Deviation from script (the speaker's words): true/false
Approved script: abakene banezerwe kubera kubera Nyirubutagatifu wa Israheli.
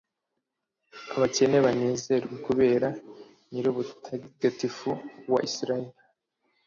true